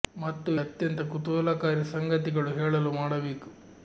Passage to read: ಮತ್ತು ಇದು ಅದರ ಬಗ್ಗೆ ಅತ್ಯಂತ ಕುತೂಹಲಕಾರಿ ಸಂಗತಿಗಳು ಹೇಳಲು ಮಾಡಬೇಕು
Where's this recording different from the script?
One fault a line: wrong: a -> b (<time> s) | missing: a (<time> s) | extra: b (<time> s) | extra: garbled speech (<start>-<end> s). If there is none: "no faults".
missing: ಇದು ಅದರ ಬಗ್ಗೆ (0.5 s)